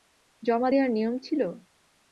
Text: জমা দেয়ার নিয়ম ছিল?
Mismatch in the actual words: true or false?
false